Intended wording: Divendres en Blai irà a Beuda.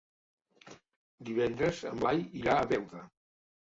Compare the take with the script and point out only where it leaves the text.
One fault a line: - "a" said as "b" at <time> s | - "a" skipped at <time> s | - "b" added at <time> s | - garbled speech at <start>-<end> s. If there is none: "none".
none